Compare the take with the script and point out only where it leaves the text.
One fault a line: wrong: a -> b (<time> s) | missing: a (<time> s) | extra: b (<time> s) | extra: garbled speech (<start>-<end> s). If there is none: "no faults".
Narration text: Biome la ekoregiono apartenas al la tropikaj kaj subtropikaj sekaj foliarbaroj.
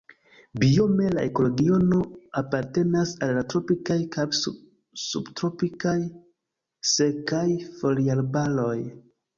no faults